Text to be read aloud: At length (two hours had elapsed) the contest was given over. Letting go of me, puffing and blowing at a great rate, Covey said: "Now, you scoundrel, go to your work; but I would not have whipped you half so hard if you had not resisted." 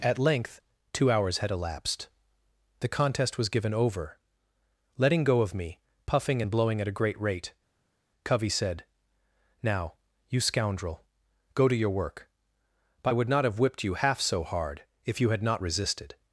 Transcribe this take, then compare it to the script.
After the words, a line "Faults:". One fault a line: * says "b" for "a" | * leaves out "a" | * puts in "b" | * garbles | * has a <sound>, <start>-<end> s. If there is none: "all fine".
At length (two hours had elapsed) the contest was given over. Letting go of me, puffing and blowing at a great rate, Covey said: "Now, you scoundrel, go to your work; but I would not have whipped you half so hard if you had not resisted."
Faults:
all fine